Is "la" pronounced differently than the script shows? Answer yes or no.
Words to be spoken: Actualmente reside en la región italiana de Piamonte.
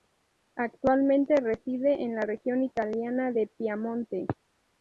no